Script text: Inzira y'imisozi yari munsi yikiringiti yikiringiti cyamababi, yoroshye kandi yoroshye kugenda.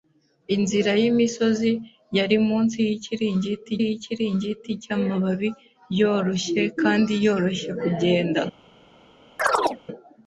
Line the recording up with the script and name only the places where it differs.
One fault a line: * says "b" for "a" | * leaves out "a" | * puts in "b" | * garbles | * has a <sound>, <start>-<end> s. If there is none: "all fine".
* has a chirp, 9.4-9.8 s